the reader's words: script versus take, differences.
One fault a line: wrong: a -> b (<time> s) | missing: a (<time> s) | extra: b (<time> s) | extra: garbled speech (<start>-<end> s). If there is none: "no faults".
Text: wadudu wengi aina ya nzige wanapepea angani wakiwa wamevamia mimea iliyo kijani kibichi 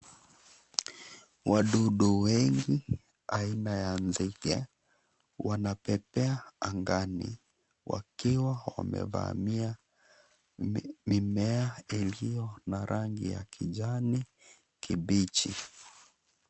extra: na rangi ya (12.7 s)